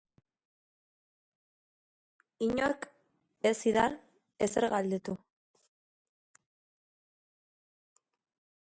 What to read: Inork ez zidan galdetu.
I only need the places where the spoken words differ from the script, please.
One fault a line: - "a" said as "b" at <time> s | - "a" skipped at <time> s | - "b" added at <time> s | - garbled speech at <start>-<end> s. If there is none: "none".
- "ezer" added at 4.5 s